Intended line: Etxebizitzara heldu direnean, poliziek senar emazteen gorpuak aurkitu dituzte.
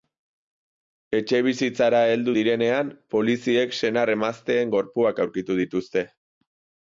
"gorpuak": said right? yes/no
yes